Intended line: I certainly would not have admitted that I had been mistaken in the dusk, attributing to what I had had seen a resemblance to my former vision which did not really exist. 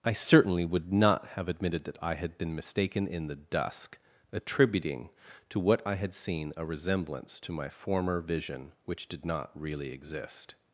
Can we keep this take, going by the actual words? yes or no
no